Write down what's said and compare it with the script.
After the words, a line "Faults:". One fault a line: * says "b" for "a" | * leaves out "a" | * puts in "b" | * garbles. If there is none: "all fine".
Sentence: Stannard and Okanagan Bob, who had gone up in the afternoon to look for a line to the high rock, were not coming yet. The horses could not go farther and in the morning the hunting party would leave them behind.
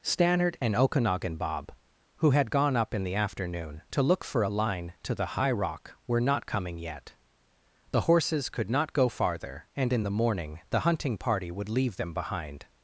Stannard and Okanagan Bob, who had gone up in the afternoon to look for a line to the high rock, were not coming yet. The horses could not go farther and in the morning the hunting party would leave them behind.
Faults:
all fine